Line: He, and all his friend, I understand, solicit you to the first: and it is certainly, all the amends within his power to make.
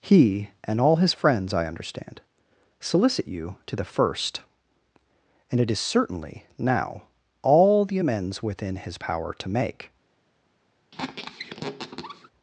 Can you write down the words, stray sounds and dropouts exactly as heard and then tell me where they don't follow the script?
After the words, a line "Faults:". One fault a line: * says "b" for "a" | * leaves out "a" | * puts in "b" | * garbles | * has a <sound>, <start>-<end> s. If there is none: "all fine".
He, and all his friends, I understand, solicit you to the first: and it is certainly, now, all the amends within his power to make.
Faults:
* says "friends" for "friend"
* puts in "now"
* has a squeak, 10.9-12.3 s